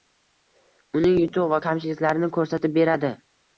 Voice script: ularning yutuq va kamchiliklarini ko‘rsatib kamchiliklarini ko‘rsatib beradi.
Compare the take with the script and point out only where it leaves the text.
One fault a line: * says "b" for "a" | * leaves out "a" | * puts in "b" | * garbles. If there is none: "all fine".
* says "uning" for "ularning"
* leaves out "kamchiliklarini ko‘rsatib"